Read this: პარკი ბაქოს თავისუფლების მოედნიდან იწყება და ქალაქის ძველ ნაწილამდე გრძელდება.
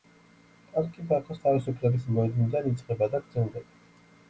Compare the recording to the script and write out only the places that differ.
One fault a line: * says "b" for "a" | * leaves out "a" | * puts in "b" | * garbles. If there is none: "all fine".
* leaves out "ქალაქის ძველ ნაწილამდე"